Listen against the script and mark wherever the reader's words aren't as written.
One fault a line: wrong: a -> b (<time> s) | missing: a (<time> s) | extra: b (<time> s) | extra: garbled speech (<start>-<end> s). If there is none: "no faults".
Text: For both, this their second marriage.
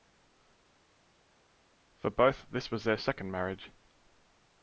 extra: was (2.7 s)